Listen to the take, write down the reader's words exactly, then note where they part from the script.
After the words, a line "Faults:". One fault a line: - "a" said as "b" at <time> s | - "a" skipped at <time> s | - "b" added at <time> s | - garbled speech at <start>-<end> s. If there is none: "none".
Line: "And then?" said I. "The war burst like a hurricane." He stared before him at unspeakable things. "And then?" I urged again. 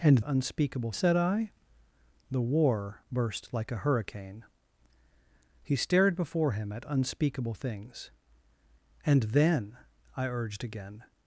"And unspeakable?" said I. "The war burst like a hurricane." He stared before him at unspeakable things. "And then?" I urged again.
Faults:
- "then" said as "unspeakable" at 0.2 s